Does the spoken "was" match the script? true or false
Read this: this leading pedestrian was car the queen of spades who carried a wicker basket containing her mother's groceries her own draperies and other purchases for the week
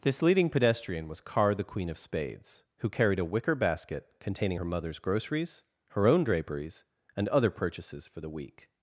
true